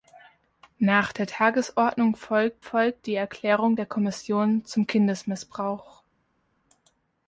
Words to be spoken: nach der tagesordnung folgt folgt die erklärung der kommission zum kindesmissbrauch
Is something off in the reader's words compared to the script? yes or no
no